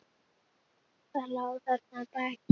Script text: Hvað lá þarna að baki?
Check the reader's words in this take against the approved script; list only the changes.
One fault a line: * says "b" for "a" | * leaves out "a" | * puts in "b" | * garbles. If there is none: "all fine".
all fine